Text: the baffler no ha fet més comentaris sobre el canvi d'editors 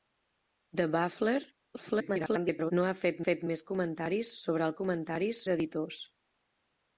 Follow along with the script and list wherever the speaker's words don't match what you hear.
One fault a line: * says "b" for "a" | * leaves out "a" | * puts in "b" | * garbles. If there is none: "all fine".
* garbles
* puts in "fet"
* says "comentaris" for "canvi"